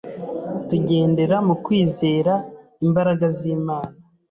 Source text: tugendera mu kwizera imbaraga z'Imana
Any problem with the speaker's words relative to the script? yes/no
no